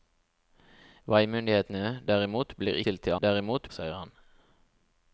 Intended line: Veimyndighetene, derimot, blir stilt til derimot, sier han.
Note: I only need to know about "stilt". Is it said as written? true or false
true